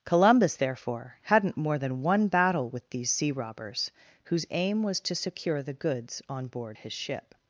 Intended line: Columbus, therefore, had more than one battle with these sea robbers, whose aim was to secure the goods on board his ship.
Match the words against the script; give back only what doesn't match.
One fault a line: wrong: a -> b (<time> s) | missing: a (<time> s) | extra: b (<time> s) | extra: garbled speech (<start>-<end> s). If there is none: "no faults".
wrong: had -> hadn't (1.2 s)